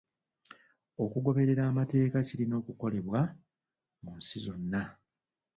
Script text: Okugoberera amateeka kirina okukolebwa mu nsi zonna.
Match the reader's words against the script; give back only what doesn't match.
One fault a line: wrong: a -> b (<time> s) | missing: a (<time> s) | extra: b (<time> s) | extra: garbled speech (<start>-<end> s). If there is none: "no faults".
no faults